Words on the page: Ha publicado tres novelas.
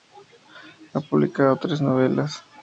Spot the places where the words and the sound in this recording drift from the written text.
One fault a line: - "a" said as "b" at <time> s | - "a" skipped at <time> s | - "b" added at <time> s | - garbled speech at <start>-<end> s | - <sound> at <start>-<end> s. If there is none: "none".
none